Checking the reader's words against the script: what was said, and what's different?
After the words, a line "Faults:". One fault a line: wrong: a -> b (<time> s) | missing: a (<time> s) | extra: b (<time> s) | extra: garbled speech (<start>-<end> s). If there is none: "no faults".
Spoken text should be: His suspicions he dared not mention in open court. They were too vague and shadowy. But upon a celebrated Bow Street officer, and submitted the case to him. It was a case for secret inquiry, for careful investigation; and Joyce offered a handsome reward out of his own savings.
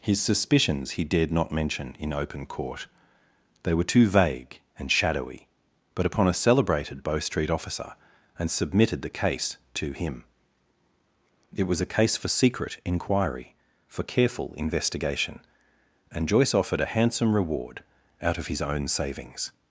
His suspicions he dared not mention in open court. They were too vague and shadowy. But upon a celebrated Bow Street officer, and submitted the case to him. It was a case for secret inquiry, for careful investigation; and Joyce offered a handsome reward out of his own savings.
Faults:
no faults